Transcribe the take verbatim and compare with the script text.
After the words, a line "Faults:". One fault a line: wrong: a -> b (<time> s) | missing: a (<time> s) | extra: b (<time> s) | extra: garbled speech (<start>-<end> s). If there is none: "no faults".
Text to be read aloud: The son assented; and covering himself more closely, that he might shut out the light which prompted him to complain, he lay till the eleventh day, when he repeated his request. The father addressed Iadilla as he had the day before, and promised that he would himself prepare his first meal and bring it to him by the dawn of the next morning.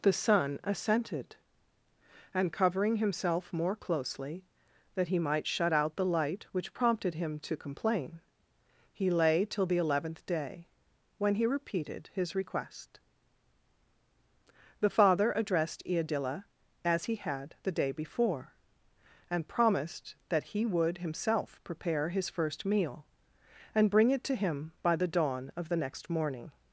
The son assented; and covering himself more closely, that he might shut out the light which prompted him to complain, he lay till the eleventh day, when he repeated his request. The father addressed Iadilla as he had the day before, and promised that he would himself prepare his first meal and bring it to him by the dawn of the next morning.
Faults:
no faults